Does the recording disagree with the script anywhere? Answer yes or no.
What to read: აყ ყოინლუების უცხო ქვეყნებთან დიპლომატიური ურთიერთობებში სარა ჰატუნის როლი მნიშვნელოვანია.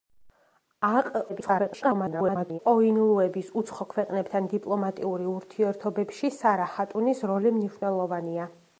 yes